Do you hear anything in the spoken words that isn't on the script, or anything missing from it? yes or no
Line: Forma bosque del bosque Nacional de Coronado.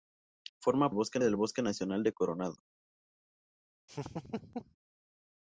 no